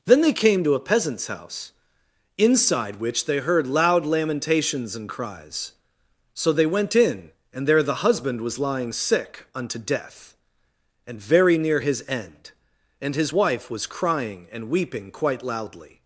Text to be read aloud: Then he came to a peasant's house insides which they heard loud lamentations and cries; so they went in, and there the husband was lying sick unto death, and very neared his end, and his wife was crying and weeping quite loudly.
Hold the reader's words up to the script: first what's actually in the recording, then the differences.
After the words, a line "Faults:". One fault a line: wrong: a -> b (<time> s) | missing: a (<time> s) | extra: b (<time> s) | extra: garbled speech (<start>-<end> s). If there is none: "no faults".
Then they came to a peasant's house inside which they heard loud lamentations and cries; so they went in, and there the husband was lying sick unto death, and very near his end, and his wife was crying and weeping quite loudly.
Faults:
wrong: he -> they (0.2 s)
wrong: insides -> inside (2.4 s)
wrong: neared -> near (11.6 s)